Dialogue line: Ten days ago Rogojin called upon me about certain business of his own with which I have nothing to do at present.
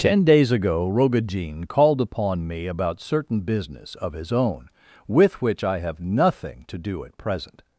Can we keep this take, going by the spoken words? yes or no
yes